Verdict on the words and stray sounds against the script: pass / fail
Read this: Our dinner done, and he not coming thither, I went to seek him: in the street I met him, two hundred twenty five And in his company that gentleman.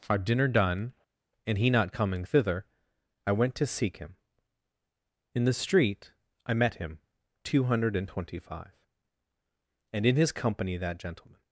fail